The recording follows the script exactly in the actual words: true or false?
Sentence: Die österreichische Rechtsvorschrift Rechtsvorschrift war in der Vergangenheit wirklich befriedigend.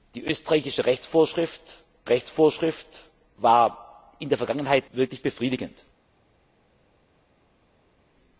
true